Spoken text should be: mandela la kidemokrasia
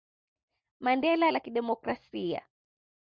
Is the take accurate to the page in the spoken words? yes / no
yes